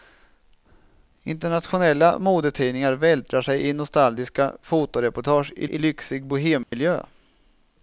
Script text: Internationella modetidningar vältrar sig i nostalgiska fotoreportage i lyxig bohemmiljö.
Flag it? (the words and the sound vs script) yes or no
yes